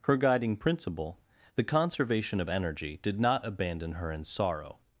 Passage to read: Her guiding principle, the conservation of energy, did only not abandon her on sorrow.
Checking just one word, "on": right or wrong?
wrong